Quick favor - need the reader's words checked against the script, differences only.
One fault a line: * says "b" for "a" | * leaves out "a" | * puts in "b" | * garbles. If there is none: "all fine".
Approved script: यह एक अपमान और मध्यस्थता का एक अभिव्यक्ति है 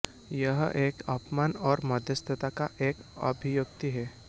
all fine